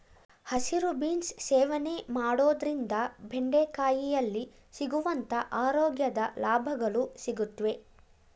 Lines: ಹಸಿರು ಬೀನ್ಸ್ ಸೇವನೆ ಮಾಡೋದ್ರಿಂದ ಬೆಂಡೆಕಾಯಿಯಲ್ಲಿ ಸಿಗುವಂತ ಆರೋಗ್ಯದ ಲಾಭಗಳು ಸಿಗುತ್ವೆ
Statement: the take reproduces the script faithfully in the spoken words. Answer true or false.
true